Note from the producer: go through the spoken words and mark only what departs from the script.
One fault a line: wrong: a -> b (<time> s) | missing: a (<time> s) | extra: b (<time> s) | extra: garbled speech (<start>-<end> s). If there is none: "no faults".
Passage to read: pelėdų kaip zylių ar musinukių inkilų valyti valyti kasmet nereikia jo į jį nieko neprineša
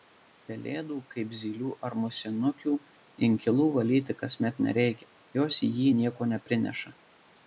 missing: valyti (4.2 s)
wrong: jo -> jos (5.4 s)